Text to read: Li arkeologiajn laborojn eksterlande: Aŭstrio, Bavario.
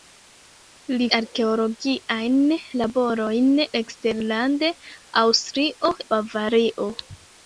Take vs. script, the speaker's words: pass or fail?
pass